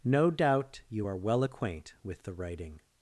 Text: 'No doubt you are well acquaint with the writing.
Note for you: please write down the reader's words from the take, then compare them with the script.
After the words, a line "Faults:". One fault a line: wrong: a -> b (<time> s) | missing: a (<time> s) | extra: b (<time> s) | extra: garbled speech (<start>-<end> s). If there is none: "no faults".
'No doubt you are well acquaint with the writing.
Faults:
no faults